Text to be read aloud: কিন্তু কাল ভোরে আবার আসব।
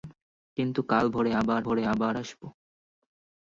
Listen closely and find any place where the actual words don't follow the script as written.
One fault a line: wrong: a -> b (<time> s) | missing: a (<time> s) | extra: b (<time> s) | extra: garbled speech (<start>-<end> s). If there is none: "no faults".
extra: ভোরে আবার (1.6 s)